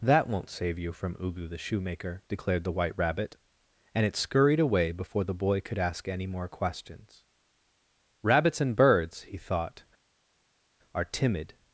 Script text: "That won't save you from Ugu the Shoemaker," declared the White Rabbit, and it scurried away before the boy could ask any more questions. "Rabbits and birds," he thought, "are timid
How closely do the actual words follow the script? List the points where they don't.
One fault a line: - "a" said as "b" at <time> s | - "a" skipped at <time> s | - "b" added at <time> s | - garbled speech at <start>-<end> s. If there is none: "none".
none